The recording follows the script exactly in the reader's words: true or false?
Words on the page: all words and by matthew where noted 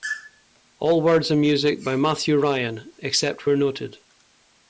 false